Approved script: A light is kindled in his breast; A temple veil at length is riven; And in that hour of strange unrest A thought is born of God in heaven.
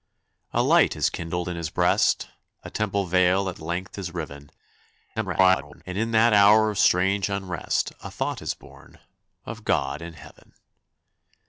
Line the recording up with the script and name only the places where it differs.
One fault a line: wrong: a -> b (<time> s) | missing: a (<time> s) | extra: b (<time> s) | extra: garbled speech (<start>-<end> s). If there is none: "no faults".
extra: garbled speech (5.2-5.8 s)